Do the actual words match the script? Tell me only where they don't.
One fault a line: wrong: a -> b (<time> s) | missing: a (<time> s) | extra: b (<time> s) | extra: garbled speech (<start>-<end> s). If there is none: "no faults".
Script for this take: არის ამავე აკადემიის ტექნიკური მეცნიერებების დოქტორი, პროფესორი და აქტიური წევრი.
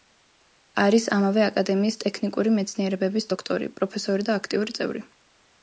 no faults